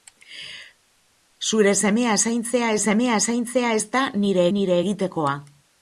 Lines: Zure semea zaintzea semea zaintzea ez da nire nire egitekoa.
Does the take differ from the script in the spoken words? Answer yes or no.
no